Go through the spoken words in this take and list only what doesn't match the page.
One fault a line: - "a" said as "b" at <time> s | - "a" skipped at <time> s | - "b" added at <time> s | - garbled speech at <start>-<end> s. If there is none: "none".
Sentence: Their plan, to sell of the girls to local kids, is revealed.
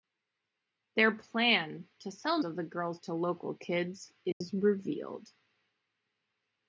none